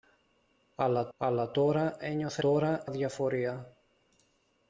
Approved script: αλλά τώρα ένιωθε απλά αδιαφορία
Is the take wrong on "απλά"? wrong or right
wrong